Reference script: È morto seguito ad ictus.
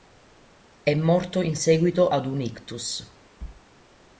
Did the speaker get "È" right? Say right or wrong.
right